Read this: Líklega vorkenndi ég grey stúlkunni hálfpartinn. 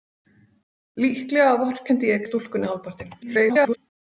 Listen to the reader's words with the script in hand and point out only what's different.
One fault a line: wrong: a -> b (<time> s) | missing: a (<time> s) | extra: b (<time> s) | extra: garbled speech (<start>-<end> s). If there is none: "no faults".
missing: grey (2.2 s)
extra: garbled speech (3.2-3.8 s)